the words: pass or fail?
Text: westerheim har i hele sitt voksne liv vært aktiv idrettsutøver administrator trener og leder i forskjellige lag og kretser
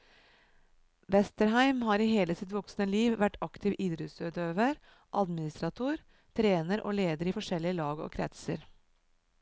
pass